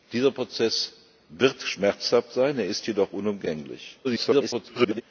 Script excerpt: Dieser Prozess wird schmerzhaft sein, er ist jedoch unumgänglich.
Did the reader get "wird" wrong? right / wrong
right